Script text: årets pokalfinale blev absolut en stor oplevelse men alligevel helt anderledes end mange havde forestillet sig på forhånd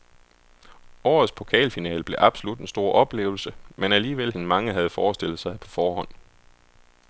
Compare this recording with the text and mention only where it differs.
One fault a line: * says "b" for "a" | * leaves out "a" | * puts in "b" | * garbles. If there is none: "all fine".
* leaves out "helt anderledes"